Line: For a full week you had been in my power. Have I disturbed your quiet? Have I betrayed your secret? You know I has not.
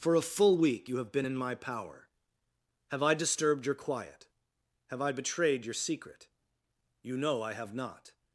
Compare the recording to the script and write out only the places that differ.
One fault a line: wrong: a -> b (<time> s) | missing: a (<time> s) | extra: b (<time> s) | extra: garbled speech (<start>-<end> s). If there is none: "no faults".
wrong: had -> have (0.9 s)
wrong: has -> have (7.5 s)